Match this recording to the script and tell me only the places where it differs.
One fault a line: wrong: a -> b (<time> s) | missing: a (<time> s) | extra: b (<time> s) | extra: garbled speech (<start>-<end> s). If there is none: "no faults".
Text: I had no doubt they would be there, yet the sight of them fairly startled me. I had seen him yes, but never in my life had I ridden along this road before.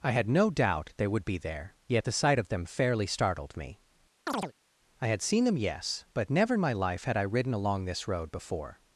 wrong: him -> them (5.4 s)